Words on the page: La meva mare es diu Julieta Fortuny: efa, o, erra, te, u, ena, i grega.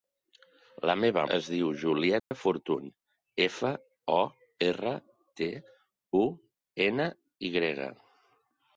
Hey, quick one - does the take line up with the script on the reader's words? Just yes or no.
no